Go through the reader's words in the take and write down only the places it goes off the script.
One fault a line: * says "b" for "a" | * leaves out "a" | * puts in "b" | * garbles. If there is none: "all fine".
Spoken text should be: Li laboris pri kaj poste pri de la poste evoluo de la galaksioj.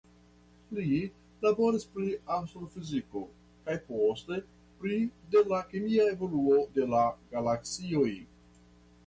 * puts in "astrofiziko"
* says "kemia" for "poste"